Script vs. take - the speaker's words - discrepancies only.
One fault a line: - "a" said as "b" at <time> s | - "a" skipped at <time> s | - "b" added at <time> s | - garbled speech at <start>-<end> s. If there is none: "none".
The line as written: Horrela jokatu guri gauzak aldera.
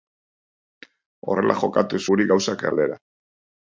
none